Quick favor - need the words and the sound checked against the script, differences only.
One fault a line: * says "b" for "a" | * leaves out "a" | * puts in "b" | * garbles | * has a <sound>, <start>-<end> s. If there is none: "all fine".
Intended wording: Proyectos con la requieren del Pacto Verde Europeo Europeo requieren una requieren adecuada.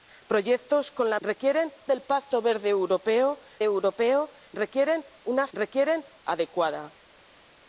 all fine